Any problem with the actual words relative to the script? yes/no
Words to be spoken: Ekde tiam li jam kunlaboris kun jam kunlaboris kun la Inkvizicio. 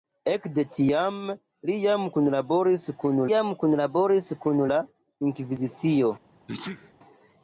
no